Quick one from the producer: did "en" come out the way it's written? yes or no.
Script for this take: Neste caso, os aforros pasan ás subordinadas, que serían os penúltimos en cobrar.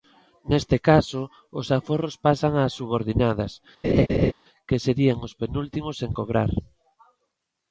yes